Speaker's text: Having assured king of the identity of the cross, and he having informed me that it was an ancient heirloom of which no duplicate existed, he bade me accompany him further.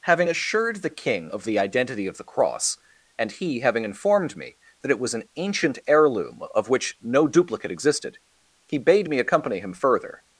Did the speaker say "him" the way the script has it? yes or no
yes